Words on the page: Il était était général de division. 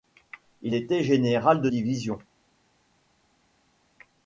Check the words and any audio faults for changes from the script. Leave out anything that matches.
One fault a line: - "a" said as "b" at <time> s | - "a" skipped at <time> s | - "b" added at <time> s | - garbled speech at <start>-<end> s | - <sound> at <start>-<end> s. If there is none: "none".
- "était" skipped at 1.0 s